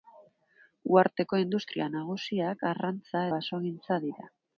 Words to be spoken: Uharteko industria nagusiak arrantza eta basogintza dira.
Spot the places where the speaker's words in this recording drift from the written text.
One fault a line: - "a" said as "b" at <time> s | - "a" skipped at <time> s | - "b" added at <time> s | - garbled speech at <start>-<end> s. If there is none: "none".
- "eta" skipped at 3.2 s